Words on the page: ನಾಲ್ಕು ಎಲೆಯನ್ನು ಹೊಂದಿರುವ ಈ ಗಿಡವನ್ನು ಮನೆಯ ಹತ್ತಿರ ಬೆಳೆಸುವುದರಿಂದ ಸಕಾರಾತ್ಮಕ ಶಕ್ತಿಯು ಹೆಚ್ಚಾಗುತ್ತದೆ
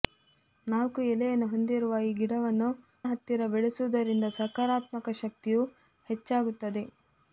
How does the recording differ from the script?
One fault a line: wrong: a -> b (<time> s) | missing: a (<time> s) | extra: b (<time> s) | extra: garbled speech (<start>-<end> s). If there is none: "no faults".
missing: ಮನೆಯ (2.7 s)